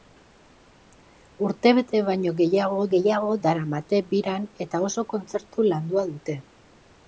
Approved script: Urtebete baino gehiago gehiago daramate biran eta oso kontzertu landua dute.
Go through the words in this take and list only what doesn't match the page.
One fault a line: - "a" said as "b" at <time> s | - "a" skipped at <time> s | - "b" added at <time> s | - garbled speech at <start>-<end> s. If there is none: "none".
none